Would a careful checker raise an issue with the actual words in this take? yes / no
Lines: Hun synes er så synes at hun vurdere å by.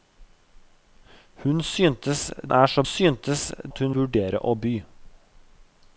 no